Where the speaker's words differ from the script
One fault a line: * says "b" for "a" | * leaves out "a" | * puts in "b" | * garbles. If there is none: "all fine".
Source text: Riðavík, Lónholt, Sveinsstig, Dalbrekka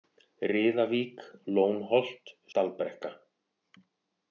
* leaves out "Sveinsstig"